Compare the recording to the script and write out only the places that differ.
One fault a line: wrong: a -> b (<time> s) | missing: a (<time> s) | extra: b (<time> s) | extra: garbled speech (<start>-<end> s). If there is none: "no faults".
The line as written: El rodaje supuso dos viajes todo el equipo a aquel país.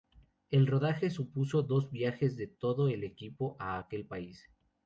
extra: de (2.4 s)